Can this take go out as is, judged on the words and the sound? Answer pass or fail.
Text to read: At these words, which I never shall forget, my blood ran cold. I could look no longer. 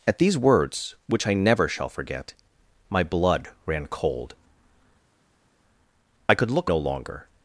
pass